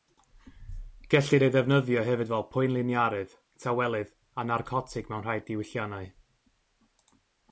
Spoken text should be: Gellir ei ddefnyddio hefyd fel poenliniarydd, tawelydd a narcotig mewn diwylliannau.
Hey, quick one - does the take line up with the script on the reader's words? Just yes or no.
no